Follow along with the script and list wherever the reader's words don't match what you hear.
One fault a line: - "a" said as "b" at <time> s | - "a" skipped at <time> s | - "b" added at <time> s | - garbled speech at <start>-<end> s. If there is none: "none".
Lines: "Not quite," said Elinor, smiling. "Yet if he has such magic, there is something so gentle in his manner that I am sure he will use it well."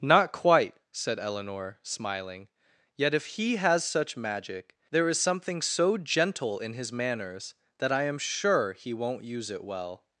- "manner" said as "manners" at 6.9 s
- "will" said as "won't" at 8.9 s